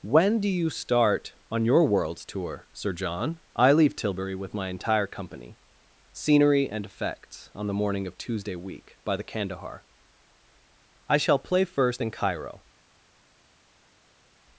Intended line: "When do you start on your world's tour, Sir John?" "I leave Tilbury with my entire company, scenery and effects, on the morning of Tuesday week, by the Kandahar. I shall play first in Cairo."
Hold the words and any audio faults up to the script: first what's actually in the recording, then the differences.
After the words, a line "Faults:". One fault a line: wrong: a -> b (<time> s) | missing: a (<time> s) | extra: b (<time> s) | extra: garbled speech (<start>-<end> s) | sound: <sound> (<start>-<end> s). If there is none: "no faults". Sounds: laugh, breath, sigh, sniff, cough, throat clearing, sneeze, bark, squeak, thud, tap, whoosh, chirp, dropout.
"When do you start on your world's tour, Sir John?" "I leave Tilbury with my entire company, scenery and effects, on the morning of Tuesday week, by the Kandahar. I shall play first in Cairo."
Faults:
no faults